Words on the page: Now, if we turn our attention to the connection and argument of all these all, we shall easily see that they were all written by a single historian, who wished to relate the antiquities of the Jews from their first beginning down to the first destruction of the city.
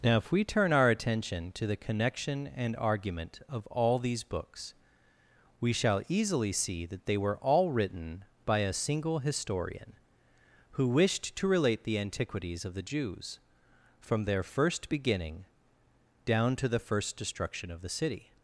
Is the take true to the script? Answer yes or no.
no